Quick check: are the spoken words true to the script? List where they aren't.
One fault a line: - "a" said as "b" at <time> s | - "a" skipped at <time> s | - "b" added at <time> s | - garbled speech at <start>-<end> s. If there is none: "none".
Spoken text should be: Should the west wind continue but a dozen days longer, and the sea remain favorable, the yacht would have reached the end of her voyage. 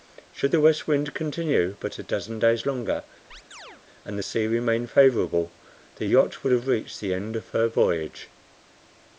none